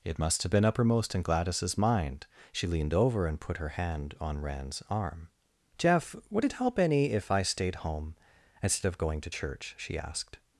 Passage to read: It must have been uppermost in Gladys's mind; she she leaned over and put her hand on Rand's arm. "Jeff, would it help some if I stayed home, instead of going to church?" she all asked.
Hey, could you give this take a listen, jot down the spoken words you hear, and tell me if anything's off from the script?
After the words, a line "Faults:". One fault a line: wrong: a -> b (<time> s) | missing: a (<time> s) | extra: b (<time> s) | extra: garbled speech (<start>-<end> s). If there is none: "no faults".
It must have been uppermost in Gladys's mind; she leaned over and put her hand on Rand's arm. "Jeff, would it help any if I stayed home, instead of going to church?" she asked.
Faults:
missing: she (2.6 s)
wrong: some -> any (6.8 s)
missing: all (10.0 s)